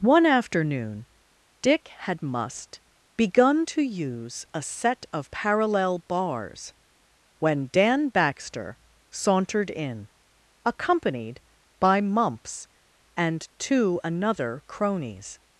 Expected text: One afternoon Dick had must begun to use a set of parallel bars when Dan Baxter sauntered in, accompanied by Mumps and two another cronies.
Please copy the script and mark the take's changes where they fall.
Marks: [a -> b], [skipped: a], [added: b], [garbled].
One afternoon Dick had must begun to use a set of parallel bars when Dan Baxter sauntered in, accompanied by Mumps and two another cronies.